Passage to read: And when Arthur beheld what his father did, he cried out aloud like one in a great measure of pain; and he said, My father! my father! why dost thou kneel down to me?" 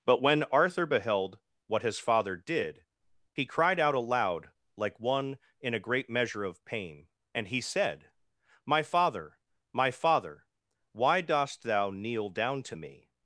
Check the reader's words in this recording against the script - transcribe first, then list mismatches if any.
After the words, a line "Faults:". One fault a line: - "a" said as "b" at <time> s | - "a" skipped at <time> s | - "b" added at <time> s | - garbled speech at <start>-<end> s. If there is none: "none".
But when Arthur beheld what his father did, he cried out aloud like one in a great measure of pain; and he said, My father! my father! why dost thou kneel down to me?"
Faults:
- "And" said as "But" at 0.1 s